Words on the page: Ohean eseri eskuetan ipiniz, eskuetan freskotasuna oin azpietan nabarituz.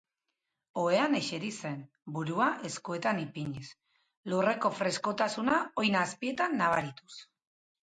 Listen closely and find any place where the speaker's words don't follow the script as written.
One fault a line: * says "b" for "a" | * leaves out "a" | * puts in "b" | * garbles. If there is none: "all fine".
* puts in "zen burua"
* says "lurreko" for "eskuetan"